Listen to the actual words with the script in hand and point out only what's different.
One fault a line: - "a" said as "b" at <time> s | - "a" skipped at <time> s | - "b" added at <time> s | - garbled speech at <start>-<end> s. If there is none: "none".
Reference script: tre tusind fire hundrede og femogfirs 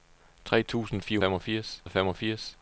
- "hundrede" said as "femogfirs" at 1.2 s